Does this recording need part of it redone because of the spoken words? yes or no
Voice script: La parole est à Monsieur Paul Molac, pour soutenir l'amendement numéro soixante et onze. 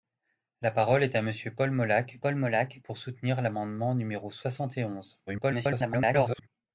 yes